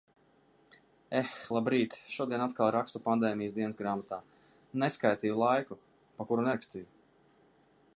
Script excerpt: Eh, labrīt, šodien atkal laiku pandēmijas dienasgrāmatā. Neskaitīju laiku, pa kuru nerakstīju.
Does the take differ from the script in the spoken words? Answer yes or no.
yes